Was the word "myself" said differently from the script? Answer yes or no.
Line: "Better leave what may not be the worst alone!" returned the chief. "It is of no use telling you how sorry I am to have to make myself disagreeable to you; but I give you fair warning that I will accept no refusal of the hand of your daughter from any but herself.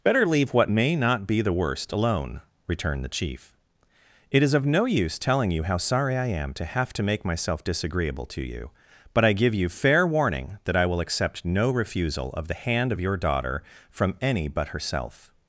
no